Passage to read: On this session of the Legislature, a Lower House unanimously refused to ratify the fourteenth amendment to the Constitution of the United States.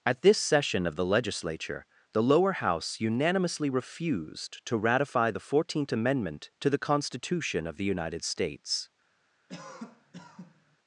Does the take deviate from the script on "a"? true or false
true